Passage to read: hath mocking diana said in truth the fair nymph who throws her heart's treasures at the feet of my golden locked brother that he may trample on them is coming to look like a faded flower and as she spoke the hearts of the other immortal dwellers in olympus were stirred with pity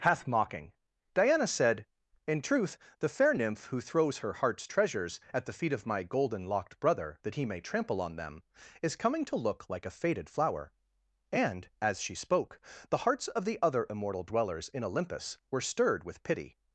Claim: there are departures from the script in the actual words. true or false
false